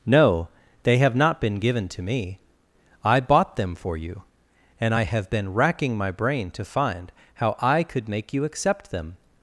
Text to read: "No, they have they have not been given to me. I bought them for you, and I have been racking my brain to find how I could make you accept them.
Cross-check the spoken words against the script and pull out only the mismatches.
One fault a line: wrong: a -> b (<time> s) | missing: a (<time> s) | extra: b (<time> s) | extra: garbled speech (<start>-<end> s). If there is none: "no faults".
missing: they have (1.1 s)